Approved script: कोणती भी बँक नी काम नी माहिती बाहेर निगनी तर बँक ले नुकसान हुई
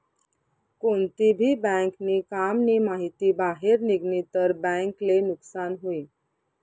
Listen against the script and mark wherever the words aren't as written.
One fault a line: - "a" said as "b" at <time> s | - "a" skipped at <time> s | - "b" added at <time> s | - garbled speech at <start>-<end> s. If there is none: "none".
none